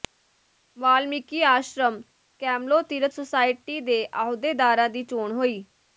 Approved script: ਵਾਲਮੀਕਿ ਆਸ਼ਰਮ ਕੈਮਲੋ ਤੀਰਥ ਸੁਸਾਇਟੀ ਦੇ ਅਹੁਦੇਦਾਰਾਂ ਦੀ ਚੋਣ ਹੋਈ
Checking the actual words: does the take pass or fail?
pass